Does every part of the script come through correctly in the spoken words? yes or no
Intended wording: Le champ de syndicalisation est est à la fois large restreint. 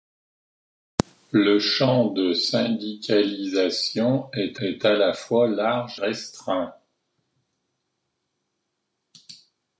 yes